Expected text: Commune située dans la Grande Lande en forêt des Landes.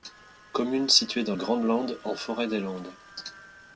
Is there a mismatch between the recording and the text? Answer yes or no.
yes